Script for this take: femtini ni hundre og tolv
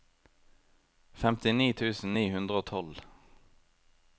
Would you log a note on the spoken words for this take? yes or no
yes